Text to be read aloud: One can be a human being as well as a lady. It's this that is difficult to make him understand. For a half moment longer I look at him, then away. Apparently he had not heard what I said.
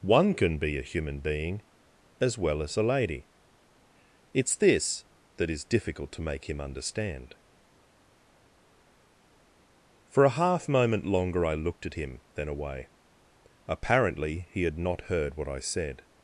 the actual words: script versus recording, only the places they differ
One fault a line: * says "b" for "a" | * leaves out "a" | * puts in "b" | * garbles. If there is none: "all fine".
* says "looked" for "look"